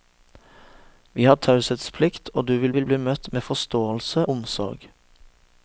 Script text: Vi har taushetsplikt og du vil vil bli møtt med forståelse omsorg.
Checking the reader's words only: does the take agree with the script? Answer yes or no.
yes